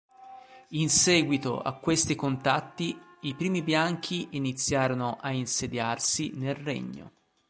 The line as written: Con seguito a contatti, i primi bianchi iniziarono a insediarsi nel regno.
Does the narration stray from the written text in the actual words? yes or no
yes